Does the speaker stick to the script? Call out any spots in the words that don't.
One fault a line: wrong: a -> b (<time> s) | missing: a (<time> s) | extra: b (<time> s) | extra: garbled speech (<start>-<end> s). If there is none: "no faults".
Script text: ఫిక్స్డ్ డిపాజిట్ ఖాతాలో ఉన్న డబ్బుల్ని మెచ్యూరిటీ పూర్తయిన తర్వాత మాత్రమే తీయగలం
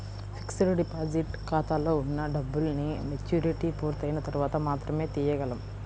no faults